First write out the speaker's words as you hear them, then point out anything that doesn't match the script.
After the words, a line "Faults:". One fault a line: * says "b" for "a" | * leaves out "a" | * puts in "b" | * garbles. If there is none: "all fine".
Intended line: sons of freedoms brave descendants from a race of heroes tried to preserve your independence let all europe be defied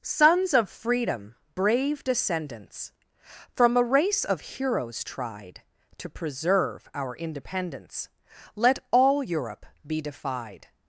sons of freedom brave descendants from a race of heroes tried to preserve our independence let all europe be defied
Faults:
* says "freedom" for "freedoms"
* says "our" for "your"